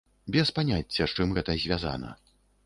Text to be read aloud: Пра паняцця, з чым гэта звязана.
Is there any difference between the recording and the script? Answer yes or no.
yes